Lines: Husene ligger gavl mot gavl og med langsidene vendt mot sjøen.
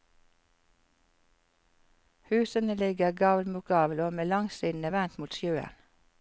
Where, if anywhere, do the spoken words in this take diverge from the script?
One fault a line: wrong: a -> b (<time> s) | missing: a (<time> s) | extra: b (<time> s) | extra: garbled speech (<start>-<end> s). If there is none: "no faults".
no faults